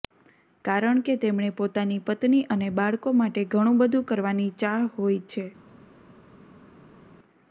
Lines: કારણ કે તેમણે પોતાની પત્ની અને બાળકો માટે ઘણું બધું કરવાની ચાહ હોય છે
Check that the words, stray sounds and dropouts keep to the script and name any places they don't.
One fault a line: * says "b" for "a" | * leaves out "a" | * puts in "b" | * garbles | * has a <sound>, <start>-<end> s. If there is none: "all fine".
all fine